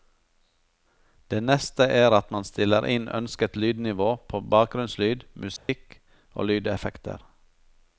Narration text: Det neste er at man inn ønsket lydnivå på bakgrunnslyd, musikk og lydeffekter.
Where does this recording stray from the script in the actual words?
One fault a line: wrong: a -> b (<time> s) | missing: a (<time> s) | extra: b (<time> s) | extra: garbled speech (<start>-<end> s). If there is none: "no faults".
extra: stiller (2.5 s)